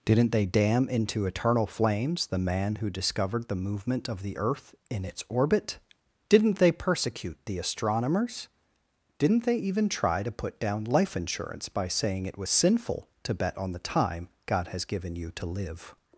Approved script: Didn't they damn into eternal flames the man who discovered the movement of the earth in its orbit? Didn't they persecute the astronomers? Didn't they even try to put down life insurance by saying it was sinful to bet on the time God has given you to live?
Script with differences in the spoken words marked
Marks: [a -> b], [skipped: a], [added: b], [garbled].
Didn't they damn into eternal flames the man who discovered the movement of the earth in its orbit? Didn't they persecute the astronomers? Didn't they even try to put down life insurance by saying it was sinful to bet on the time God has given you to live?